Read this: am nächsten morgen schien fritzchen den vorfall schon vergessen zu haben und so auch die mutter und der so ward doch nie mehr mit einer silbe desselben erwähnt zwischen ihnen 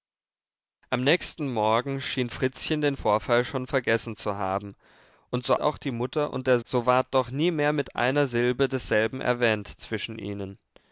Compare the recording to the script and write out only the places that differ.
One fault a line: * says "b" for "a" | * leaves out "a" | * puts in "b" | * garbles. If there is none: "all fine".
all fine